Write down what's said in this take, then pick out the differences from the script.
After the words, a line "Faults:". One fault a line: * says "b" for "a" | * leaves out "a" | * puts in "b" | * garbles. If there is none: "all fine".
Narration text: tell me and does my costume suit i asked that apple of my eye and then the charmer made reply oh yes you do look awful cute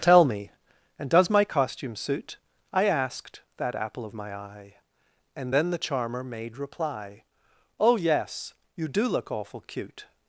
tell me and does my costume suit i asked that apple of my eye and then the charmer made reply oh yes you do look awful cute
Faults:
all fine